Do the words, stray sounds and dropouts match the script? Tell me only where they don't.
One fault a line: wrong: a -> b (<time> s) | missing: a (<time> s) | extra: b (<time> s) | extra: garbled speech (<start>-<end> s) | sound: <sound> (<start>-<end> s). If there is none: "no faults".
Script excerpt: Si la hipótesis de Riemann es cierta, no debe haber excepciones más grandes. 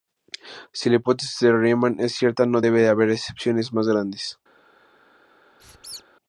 sound: squeak (5.6-6.0 s)